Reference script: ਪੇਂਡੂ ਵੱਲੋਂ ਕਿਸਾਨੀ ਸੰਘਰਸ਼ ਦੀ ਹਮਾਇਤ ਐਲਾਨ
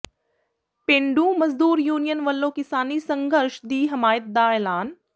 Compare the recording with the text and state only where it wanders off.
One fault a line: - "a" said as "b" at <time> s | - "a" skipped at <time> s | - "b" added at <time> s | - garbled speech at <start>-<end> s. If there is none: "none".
- "ਮਜ਼ਦੂਰ ਯੂਨੀਅਨ" added at 1.4 s
- "ਦਾ" added at 4.3 s